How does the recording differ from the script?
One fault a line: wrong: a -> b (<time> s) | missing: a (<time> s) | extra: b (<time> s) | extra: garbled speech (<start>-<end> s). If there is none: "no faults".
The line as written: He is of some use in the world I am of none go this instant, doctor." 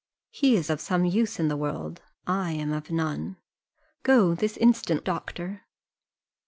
no faults